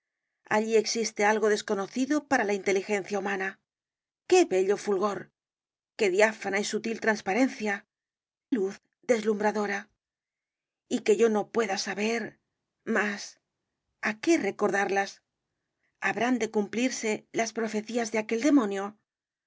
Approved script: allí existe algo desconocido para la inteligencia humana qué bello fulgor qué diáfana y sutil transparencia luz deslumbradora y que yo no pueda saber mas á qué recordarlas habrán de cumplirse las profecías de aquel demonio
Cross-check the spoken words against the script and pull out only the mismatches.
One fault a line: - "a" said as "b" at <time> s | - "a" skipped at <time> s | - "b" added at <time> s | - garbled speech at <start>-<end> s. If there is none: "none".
none